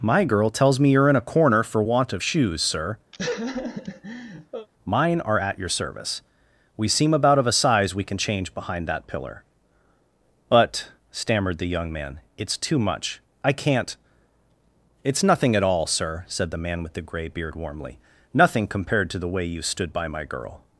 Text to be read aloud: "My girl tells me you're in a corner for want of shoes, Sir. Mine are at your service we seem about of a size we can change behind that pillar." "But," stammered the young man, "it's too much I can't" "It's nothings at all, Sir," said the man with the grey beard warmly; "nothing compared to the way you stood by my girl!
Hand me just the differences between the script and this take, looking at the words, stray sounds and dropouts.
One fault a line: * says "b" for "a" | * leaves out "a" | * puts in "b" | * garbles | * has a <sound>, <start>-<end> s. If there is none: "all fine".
* has a laugh, 3.1-4.7 s
* says "nothing" for "nothings"